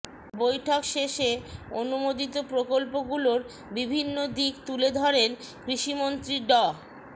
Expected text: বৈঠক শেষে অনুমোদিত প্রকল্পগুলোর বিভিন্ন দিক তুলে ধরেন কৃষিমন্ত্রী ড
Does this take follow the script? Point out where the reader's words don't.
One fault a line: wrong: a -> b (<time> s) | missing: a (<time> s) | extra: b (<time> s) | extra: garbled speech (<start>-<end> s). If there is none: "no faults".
no faults